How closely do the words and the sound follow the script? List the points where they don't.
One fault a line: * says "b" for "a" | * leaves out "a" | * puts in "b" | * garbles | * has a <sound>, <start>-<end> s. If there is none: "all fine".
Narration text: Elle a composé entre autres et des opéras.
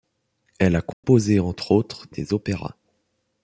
* has a dropout, 0.9-1.0 s